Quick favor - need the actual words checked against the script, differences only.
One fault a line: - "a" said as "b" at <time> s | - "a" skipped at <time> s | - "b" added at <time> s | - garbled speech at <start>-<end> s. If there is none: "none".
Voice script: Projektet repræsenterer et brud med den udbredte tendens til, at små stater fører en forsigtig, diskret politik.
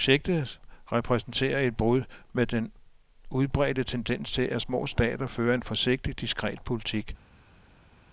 none